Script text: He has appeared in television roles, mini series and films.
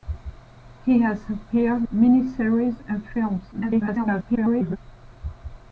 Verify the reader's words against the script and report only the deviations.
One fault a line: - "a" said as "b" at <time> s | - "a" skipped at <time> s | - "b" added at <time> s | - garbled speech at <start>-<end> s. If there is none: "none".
- "in television roles" skipped at 1.9 s
- garbled speech at 3.5-4.8 s